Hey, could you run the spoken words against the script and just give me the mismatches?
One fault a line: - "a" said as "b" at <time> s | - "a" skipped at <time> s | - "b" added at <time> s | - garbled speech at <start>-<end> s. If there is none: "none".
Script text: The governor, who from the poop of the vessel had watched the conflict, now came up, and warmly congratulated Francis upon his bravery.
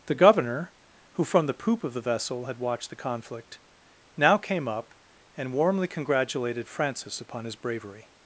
none